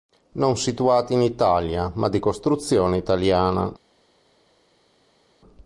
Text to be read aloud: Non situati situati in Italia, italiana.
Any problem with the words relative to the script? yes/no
yes